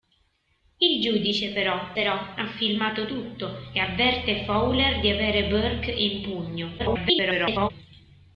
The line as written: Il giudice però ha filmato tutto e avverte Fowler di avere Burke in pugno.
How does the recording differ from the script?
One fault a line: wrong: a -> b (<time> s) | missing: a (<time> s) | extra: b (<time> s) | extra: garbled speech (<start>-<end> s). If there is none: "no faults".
extra: però (1.9 s)
extra: garbled speech (6.8-7.7 s)